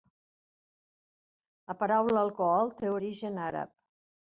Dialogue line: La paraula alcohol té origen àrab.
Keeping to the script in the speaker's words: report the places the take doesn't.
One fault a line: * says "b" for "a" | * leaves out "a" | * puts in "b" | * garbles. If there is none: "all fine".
all fine